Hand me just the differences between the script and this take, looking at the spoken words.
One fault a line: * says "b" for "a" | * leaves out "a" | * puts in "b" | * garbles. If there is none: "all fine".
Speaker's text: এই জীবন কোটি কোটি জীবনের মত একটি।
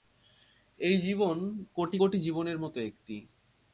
all fine